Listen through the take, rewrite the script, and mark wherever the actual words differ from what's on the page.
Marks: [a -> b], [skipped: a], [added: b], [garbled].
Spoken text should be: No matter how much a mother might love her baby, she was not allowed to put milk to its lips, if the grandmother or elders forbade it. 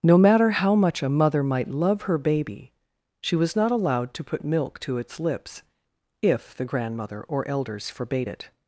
No matter how much a mother might love her baby, she was not allowed to put milk to its lips, if the grandmother or elders forbade it.